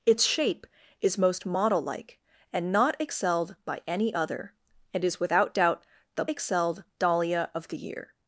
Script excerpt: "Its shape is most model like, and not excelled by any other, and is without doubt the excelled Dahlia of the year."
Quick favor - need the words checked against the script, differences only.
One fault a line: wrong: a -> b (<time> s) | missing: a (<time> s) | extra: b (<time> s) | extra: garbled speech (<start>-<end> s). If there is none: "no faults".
no faults